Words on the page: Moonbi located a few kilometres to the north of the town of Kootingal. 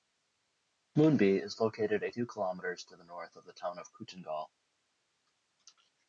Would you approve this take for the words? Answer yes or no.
no